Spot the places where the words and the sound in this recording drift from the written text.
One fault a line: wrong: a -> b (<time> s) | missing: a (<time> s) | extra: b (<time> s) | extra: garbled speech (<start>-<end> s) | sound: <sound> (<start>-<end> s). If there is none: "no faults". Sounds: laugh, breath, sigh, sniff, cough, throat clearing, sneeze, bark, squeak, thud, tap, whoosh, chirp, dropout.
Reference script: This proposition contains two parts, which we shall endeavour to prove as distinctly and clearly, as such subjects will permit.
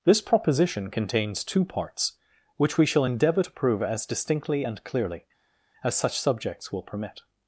no faults